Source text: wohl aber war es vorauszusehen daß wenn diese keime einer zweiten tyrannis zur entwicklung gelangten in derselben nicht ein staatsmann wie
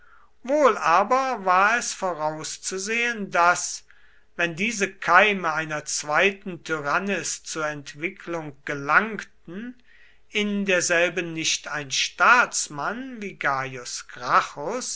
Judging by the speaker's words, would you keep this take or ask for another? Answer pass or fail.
pass